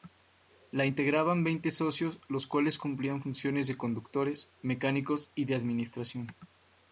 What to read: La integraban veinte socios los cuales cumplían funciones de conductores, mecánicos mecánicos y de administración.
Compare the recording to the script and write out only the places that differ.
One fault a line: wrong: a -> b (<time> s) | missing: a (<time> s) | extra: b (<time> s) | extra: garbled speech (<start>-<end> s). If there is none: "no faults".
missing: mecánicos (5.3 s)